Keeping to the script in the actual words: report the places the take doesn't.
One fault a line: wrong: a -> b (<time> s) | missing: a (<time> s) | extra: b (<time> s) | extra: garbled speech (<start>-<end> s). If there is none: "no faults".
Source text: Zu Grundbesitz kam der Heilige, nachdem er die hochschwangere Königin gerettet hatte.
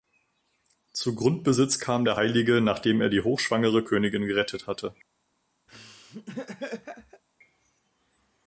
no faults